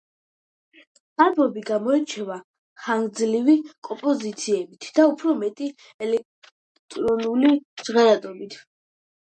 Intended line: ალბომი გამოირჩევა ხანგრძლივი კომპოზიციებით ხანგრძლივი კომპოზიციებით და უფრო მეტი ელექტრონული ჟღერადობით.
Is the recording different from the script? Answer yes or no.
yes